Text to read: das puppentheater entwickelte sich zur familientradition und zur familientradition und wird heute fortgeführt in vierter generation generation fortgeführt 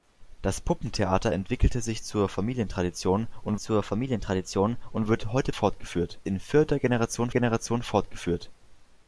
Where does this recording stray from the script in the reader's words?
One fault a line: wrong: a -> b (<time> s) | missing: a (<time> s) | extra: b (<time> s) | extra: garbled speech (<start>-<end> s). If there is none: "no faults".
no faults